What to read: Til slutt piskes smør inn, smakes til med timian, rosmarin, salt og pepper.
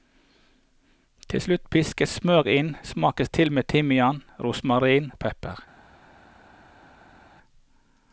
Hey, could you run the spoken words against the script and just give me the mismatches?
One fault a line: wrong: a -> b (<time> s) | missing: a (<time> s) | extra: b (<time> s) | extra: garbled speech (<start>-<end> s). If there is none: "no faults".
missing: salt (5.1 s)